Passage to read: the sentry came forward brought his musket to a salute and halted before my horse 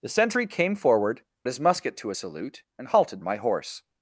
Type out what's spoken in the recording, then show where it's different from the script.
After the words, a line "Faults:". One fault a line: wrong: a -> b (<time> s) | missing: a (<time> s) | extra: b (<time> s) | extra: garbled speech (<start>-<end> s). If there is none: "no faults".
the sentry came forward his musket to a salute and halted my horse
Faults:
missing: brought (1.2 s)
missing: before (3.2 s)